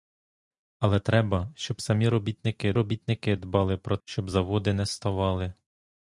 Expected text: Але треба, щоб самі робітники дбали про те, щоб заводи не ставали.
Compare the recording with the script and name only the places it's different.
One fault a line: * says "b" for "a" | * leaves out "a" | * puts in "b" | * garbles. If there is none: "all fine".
* puts in "робітники"
* leaves out "те"